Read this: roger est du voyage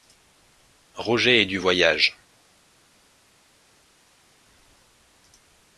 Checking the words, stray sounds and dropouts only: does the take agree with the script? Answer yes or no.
yes